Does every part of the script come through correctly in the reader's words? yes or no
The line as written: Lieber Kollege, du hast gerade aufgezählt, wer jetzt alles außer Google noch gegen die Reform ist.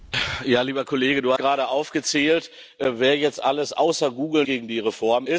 no